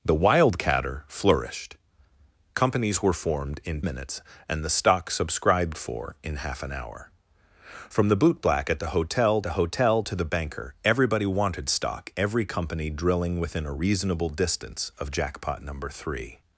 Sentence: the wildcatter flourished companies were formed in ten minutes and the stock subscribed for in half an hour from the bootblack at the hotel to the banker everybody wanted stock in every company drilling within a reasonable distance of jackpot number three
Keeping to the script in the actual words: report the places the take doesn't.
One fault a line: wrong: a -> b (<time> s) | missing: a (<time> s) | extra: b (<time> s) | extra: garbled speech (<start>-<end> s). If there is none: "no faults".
missing: ten (3.8 s)
extra: the hotel (9.4 s)
missing: in (12.1 s)